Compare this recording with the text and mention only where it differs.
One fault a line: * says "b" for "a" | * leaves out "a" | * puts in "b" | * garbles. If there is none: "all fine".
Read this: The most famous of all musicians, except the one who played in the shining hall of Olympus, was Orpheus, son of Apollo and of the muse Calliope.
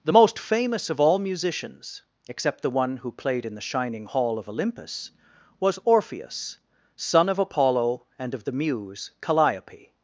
all fine